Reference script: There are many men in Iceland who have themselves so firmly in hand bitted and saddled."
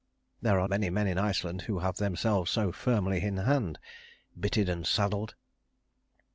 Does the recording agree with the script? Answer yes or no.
yes